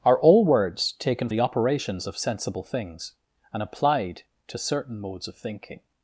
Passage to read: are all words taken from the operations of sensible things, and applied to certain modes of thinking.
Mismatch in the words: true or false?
true